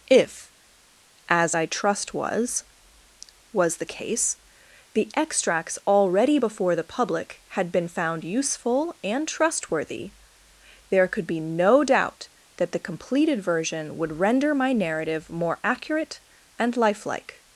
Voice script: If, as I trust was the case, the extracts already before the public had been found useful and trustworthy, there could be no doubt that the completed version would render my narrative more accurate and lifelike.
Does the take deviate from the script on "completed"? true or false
false